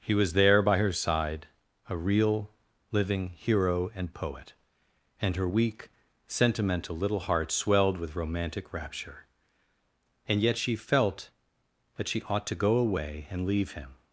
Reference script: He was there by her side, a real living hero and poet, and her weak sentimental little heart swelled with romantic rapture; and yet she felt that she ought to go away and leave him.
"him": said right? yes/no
yes